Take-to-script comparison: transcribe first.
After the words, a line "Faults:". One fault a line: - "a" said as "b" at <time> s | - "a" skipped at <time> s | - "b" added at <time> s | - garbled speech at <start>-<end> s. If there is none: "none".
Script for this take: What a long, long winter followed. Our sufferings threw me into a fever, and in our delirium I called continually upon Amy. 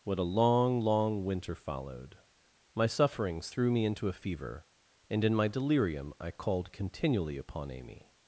What a long, long winter followed. My sufferings threw me into a fever, and in my delirium I called continually upon Amy.
Faults:
- "Our" said as "My" at 2.7 s
- "our" said as "my" at 5.3 s